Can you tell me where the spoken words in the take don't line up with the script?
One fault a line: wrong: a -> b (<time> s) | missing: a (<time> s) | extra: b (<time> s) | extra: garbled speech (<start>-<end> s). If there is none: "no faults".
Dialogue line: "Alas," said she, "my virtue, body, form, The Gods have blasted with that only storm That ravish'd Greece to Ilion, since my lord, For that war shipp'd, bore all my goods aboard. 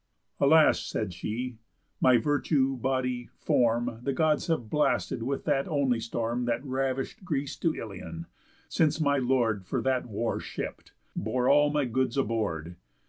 no faults